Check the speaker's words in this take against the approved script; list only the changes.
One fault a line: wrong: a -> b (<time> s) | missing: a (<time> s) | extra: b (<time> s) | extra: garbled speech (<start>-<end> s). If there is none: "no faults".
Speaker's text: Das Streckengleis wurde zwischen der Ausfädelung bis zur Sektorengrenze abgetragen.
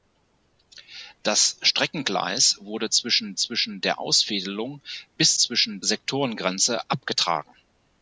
extra: zwischen (3.3 s)
wrong: zur -> zwischen (5.3 s)